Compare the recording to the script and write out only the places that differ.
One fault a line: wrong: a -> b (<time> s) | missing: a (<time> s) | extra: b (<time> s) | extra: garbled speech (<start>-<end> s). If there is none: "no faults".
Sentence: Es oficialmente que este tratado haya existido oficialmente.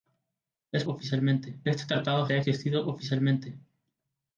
no faults